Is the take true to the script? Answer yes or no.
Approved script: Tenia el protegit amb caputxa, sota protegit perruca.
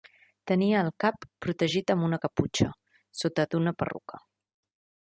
no